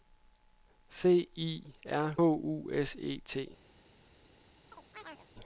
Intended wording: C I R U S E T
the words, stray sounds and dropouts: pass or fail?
fail